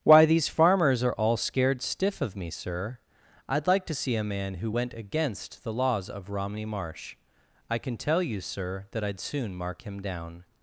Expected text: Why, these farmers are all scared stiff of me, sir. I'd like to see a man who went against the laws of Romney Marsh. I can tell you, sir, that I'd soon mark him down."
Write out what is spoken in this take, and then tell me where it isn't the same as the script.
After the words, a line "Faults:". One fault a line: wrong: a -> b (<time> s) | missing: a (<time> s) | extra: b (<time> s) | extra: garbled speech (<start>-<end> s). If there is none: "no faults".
Why, these farmers are all scared stiff of me, sir. I'd like to see a man who went against the laws of Romney Marsh. I can tell you, sir, that I'd soon mark him down."
Faults:
no faults